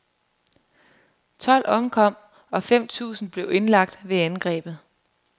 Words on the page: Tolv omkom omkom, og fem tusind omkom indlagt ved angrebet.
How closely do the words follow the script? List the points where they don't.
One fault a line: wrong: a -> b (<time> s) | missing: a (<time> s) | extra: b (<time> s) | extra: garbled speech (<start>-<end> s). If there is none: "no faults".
missing: omkom (2.1 s)
wrong: omkom -> blev (3.3 s)